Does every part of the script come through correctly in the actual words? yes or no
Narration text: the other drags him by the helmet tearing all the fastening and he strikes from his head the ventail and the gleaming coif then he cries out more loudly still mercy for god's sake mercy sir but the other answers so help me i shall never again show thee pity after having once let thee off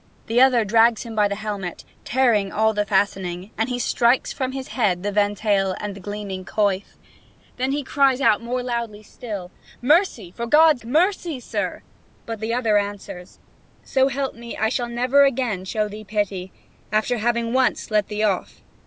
no